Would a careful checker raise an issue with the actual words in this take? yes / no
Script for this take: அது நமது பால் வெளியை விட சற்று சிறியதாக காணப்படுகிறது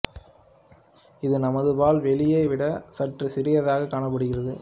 yes